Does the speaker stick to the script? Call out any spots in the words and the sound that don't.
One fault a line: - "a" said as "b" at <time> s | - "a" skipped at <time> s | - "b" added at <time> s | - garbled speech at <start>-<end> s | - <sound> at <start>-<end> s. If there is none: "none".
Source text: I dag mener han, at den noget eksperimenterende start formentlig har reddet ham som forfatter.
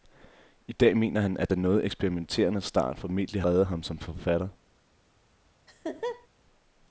- "har" skipped at 3.4 s
- laugh at 5.7-6.3 s